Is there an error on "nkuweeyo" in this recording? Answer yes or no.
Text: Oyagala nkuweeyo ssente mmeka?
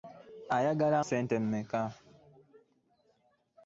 yes